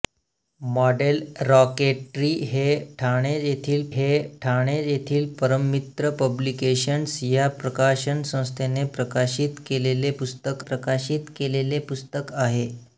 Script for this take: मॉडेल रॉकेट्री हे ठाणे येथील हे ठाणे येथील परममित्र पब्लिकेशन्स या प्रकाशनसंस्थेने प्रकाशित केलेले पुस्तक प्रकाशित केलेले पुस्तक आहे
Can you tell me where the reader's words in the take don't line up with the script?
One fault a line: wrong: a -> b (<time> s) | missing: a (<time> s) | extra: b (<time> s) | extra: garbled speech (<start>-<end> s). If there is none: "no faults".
no faults